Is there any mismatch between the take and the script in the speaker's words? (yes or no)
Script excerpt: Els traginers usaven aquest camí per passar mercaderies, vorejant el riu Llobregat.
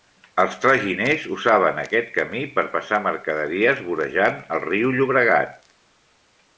no